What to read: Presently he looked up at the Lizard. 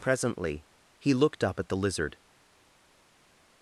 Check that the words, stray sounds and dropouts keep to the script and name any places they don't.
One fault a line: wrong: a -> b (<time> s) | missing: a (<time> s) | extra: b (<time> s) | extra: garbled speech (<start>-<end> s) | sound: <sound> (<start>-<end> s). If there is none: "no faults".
no faults